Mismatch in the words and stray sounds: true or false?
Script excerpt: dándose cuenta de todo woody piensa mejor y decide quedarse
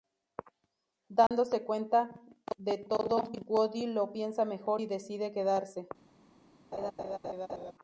true